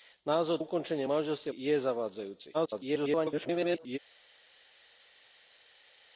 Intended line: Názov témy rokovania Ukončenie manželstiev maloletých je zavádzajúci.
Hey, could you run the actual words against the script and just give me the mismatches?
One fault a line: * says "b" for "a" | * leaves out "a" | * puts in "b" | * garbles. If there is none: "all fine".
* leaves out "témy rokovania"
* leaves out "maloletých"
* garbles